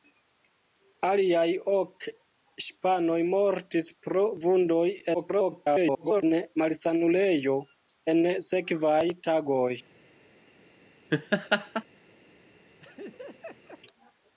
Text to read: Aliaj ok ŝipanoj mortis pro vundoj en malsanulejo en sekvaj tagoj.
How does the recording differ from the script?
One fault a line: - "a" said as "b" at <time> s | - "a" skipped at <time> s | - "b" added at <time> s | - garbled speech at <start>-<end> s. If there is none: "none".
- garbled speech at 5.1-6.2 s